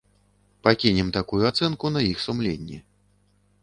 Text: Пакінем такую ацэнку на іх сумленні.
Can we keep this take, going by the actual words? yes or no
yes